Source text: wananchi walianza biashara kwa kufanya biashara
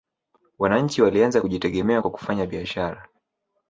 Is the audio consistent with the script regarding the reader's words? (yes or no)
no